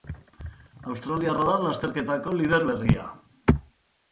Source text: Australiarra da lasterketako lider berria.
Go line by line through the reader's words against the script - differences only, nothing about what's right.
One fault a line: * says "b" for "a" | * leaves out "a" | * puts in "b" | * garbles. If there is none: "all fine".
all fine